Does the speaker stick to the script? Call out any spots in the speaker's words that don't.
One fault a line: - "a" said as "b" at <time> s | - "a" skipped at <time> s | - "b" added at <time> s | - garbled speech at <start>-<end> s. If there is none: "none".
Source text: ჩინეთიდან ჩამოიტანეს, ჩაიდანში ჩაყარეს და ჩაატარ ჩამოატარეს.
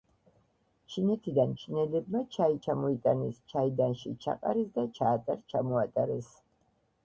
- "ჩინელებმა ჩაი" added at 1.6 s